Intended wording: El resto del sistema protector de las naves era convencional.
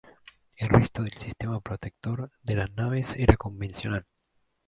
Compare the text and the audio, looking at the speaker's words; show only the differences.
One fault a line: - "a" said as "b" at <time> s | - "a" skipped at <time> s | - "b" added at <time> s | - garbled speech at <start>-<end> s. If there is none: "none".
none